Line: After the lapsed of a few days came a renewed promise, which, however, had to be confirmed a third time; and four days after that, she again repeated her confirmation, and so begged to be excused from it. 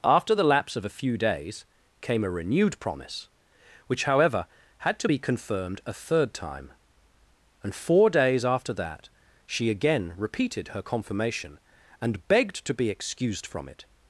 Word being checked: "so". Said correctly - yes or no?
no